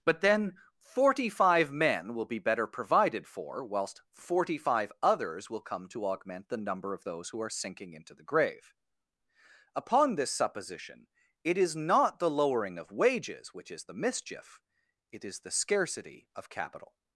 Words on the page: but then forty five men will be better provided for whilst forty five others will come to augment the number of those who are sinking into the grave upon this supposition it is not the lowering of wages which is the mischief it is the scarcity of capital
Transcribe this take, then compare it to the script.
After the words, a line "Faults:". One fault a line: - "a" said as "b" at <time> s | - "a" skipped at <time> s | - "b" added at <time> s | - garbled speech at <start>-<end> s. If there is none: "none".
but then forty five men will be better provided for whilst forty five others will come to augment the number of those who are sinking into the grave upon this supposition it is not the lowering of wages which is the mischief it is the scarcity of capital
Faults:
none